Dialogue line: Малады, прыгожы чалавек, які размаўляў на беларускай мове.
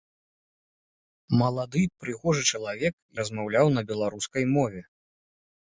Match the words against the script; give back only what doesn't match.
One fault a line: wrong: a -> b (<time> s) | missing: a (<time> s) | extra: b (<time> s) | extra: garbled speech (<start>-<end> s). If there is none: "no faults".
missing: які (2.9 s)